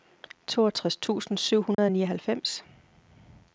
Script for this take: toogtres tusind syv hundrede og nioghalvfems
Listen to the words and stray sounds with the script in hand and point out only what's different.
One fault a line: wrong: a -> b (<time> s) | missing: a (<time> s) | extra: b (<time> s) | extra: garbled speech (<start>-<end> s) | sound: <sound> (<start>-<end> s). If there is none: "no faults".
sound: dropout (1.7-1.8 s)